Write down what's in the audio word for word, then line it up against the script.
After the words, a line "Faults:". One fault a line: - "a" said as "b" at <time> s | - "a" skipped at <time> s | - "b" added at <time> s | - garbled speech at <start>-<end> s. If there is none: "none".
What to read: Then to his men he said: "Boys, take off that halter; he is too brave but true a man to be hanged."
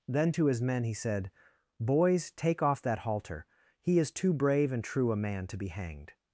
Then to his men he said: "Boys, take off that halter; he is too brave and true a man to be hanged."
Faults:
- "but" said as "and" at 4.7 s